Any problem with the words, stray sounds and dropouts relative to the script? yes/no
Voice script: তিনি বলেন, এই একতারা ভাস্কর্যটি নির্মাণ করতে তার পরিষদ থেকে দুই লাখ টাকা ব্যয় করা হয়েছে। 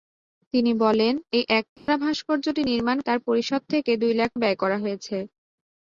yes